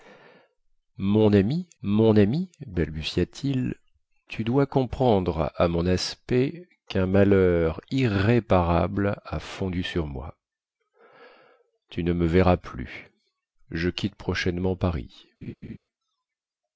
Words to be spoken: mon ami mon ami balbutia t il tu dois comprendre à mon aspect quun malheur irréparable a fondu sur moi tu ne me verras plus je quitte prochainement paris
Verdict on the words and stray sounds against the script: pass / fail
fail